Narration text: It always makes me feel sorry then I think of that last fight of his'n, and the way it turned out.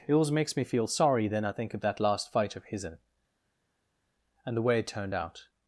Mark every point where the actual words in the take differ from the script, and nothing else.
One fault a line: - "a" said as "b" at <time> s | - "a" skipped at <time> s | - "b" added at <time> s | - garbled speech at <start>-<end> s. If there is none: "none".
none